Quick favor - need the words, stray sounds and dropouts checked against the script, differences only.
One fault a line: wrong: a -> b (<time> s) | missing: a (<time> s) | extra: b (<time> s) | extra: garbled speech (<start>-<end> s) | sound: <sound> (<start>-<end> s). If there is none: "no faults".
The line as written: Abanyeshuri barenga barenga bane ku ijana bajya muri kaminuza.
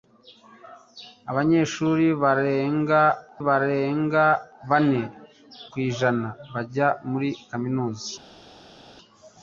no faults